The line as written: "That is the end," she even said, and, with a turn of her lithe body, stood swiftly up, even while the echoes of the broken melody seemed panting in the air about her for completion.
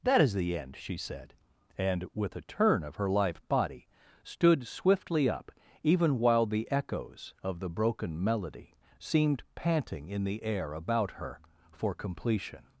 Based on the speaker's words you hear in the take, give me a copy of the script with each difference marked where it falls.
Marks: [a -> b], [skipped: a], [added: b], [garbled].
"That is the end," she [skipped: even] said, and, with a turn of her lithe body, stood swiftly up, even while the echoes of the broken melody seemed panting in the air about her for completion.